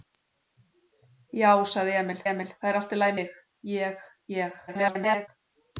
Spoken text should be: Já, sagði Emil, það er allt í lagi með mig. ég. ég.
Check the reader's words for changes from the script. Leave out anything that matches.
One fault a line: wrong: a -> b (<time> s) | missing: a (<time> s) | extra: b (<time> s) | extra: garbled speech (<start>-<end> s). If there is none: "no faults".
extra: Emil (2.3 s)
missing: með (3.2 s)
extra: garbled speech (4.7-5.3 s)